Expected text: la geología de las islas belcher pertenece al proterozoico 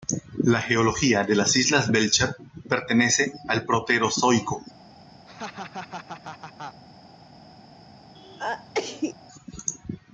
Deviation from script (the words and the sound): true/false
true